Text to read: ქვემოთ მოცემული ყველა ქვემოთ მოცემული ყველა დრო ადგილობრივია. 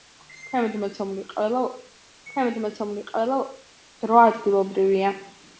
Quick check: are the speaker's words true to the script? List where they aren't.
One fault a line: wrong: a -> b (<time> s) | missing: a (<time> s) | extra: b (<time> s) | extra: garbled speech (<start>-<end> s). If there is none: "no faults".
no faults